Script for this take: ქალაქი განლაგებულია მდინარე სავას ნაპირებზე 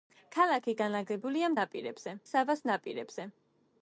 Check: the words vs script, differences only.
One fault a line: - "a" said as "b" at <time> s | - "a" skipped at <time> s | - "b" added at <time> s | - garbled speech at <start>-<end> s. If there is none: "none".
- "მდინარე" said as "ნაპირებზე" at 1.6 s